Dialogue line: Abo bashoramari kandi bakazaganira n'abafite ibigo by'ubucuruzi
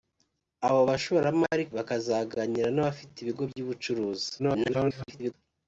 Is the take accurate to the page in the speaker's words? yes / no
no